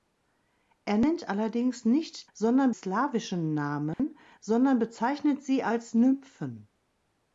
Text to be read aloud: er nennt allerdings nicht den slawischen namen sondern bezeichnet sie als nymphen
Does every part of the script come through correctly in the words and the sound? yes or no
no